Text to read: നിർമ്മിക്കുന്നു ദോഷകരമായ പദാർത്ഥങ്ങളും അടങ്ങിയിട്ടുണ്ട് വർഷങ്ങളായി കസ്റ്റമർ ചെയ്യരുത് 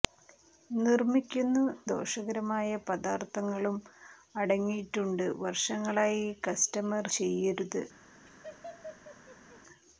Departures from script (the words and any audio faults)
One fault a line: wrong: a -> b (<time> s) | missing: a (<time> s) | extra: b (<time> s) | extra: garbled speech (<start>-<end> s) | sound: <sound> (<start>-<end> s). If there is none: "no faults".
sound: laugh (8.3-9.6 s)